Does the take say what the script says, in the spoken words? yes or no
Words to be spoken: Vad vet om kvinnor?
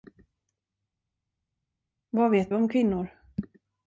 yes